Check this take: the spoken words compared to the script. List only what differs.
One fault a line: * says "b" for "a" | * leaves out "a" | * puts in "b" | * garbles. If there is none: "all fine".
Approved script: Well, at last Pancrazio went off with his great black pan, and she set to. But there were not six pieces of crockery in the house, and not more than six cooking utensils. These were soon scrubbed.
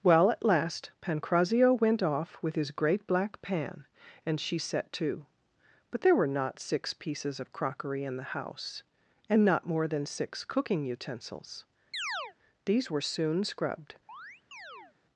all fine